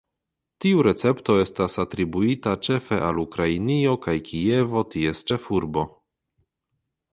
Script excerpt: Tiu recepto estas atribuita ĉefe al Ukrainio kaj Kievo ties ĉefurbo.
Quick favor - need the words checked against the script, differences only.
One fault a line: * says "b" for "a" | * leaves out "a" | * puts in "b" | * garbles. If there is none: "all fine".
all fine